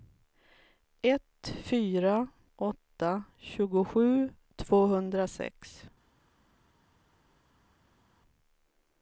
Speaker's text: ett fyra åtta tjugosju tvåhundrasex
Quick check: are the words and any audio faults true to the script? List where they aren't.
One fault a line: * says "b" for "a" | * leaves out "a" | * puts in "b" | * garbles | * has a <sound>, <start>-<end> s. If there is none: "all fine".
all fine